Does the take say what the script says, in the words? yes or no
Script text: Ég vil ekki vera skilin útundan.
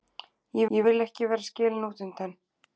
no